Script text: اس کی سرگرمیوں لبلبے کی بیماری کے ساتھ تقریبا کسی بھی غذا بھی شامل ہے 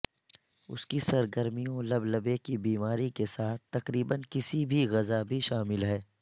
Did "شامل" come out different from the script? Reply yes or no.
no